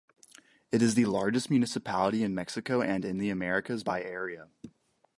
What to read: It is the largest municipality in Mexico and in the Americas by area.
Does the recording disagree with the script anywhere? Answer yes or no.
no